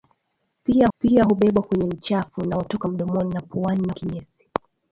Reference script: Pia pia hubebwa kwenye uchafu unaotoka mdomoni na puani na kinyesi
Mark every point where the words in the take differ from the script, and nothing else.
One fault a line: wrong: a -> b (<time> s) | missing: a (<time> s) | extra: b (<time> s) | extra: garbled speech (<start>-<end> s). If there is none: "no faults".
no faults